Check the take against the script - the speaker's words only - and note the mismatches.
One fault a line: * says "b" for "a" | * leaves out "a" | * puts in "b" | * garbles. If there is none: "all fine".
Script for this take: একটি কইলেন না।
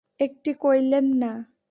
all fine